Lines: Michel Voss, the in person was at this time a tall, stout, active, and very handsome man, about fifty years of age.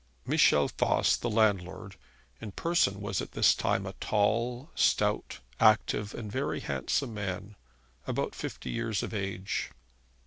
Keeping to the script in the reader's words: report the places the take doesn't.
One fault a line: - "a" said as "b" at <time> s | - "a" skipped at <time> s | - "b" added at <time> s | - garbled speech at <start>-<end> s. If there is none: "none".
- "landlord" added at 1.3 s